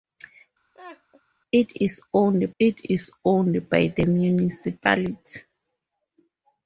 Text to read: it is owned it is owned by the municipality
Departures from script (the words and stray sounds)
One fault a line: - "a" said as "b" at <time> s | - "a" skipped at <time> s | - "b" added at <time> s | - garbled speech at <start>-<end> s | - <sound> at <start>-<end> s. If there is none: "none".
- laugh at 0.7-1.2 s